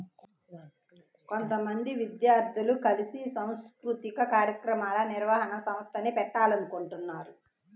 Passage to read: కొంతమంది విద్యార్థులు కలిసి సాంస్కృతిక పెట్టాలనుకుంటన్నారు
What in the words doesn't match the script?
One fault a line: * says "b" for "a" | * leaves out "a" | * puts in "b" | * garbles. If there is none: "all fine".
* puts in "కార్యక్రమాల నిర్వహణ సంస్థని"